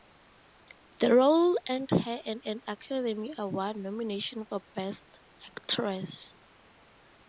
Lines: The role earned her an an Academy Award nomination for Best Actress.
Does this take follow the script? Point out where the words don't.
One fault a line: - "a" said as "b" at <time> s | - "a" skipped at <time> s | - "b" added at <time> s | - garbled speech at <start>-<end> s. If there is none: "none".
none